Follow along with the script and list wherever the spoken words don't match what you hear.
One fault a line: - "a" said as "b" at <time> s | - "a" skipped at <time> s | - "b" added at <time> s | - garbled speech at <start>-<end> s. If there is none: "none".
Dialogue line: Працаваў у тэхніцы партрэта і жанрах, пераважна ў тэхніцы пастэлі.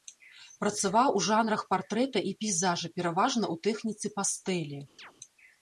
- "тэхніцы" said as "жанрах" at 1.3 s
- "жанрах" said as "пейзажа" at 2.4 s